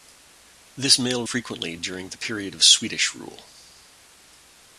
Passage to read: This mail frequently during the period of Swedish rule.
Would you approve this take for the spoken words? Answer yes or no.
yes